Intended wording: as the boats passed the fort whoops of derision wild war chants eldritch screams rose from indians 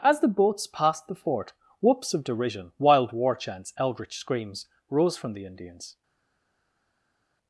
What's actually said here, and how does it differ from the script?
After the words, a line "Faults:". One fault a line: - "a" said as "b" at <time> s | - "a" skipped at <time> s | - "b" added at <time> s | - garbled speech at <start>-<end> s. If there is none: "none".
as the boats passed the fort whoops of derision wild war chants eldritch screams rose from the indians
Faults:
- "the" added at 5.3 s